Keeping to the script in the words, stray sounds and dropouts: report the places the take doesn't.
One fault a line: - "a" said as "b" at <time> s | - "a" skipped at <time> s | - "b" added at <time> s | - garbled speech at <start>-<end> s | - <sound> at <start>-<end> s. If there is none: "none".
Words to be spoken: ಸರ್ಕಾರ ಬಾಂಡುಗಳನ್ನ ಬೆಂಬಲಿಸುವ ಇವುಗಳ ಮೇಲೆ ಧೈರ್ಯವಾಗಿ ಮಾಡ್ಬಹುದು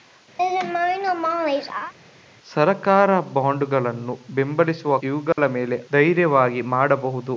- laugh at 0.4-1.9 s
- dropout at 5.3-5.4 s